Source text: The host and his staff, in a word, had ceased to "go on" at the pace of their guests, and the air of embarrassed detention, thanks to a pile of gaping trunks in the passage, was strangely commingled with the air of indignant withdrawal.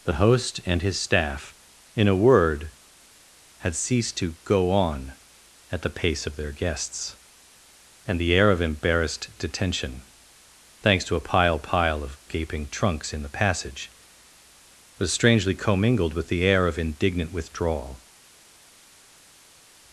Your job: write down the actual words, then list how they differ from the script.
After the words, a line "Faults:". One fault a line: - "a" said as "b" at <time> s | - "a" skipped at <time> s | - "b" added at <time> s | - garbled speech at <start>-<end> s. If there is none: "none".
The host and his staff, in a word, had ceased to "go on" at the pace of their guests, and the air of embarrassed detention, thanks to a pile pile of gaping trunks in the passage, was strangely commingled with the air of indignant withdrawal.
Faults:
- "pile" added at 11.6 s